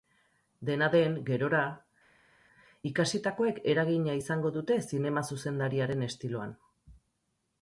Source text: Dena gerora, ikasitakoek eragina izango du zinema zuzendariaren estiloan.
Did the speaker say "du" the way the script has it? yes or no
no